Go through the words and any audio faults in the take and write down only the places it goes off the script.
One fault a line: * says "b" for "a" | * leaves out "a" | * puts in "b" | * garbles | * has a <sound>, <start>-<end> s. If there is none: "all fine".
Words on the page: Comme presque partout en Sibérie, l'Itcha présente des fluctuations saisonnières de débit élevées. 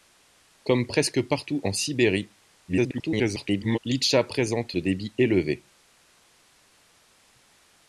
* garbles
* leaves out "des fluctuations saisonnières"